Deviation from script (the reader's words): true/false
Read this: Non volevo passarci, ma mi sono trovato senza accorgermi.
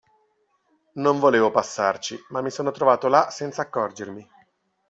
true